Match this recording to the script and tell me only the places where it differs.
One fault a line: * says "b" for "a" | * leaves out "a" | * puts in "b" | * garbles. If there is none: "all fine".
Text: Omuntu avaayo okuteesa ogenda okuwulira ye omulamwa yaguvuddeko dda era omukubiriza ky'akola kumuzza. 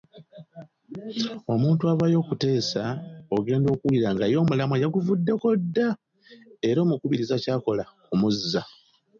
* puts in "nga"